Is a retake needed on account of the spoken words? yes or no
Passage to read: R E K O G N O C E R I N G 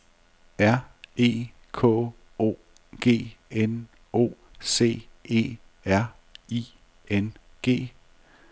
no